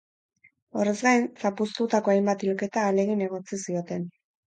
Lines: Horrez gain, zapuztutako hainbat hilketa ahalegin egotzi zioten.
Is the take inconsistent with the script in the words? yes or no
no